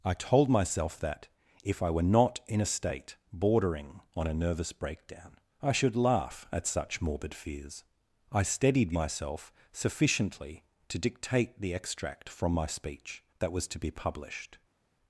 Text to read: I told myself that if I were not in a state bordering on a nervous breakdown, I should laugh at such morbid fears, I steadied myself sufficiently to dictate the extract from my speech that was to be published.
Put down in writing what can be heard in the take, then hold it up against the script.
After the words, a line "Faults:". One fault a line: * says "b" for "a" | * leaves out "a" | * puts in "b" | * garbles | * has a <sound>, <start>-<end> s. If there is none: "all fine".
I told myself that if I were not in a state bordering on a nervous breakdown, I should laugh at such morbid fears, I steadied myself sufficiently to dictate the extract from my speech that was to be published.
Faults:
all fine